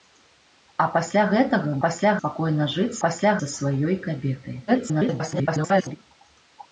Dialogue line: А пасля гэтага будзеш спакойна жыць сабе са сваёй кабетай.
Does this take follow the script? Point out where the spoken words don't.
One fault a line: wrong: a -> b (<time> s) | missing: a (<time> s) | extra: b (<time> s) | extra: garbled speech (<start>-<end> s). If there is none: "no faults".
wrong: будзеш -> пасля (1.8 s)
wrong: сабе -> пасля (3.0 s)
extra: garbled speech (4.7-6.0 s)